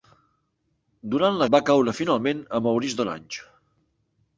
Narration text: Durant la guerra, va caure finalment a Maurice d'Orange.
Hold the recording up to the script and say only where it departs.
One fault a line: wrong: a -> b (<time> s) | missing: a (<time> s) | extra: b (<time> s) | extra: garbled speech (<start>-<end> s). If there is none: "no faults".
missing: guerra (1.5 s)